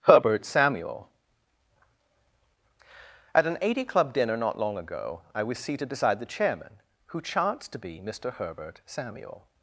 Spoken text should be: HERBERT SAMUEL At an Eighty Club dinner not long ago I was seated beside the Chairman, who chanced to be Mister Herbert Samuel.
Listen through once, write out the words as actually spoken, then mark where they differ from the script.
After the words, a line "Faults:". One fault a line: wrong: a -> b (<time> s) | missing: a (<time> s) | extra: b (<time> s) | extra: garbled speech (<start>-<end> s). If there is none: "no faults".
HERBERT SAMUEL At an Eighty Club dinner not long ago I was seated beside the Chairman, who chanced to be Mister Herbert Samuel.
Faults:
no faults